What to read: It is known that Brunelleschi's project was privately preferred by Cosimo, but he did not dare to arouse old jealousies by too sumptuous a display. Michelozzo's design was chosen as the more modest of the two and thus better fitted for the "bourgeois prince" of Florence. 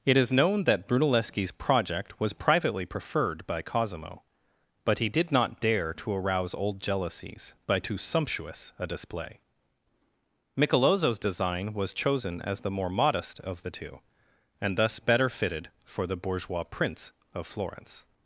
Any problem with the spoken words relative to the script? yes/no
no